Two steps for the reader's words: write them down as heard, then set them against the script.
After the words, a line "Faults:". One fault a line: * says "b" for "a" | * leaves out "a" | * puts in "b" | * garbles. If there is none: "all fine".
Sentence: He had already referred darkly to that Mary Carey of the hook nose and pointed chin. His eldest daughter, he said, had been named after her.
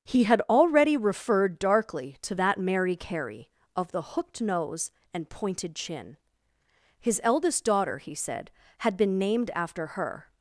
He had already referred darkly to that Mary Carey of the hooked nose and pointed chin. His eldest daughter, he said, had been named after her.
Faults:
* says "hooked" for "hook"